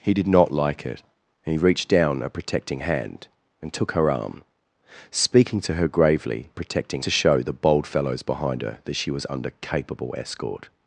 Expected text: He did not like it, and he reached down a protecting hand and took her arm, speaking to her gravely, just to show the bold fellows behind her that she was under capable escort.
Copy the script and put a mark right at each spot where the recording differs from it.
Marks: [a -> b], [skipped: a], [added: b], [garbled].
He did not like it, and he reached down a protecting hand and took her arm, speaking to her gravely, [just -> protecting] to show the bold fellows behind her that she was under capable escort.